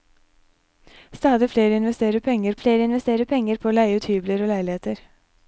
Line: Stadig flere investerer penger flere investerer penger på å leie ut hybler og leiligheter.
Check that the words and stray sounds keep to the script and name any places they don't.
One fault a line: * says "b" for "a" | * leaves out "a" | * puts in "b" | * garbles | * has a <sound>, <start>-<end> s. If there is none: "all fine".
all fine